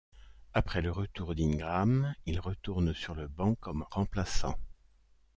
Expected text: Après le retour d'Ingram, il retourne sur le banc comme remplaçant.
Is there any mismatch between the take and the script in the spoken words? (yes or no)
no